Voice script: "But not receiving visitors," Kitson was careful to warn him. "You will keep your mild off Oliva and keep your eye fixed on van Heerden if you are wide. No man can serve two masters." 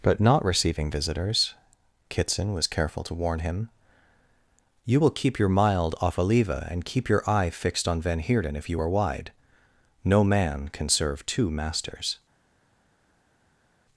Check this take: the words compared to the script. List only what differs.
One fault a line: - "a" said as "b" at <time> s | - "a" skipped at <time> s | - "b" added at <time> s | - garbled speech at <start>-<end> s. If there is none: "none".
none